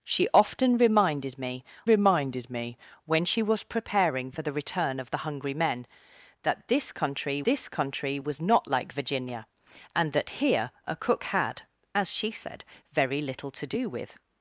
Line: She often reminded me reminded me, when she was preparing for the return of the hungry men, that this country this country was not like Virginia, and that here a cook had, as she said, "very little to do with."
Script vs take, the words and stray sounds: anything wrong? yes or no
no